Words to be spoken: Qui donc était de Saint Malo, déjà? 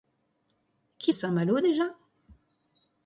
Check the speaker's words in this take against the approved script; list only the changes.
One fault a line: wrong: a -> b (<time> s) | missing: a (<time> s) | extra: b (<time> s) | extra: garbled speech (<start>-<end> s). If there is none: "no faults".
missing: donc était de (1.1 s)